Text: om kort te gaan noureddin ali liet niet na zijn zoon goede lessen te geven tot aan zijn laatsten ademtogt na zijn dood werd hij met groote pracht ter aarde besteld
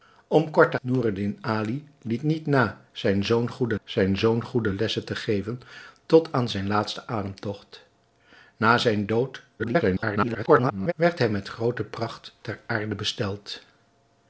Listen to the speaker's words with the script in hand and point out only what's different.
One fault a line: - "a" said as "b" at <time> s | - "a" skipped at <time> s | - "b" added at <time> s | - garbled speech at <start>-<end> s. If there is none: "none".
- "gaan" skipped at 0.8 s
- "zijn zoon goede" added at 3.8 s
- garbled speech at 9.6-10.9 s